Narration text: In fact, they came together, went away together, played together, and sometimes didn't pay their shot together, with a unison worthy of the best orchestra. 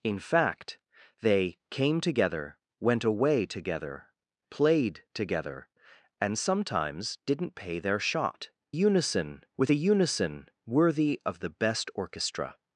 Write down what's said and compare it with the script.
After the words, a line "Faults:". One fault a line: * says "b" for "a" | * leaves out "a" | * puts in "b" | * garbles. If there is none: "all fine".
In fact, they came together, went away together, played together, and sometimes didn't pay their shot unison, with a unison worthy of the best orchestra.
Faults:
* says "unison" for "together"